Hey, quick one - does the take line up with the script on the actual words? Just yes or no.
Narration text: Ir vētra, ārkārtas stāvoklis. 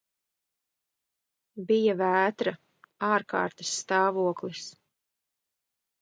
no